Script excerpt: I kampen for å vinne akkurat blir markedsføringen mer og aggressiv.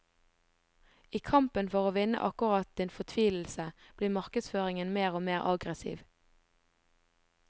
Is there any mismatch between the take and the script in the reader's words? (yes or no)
yes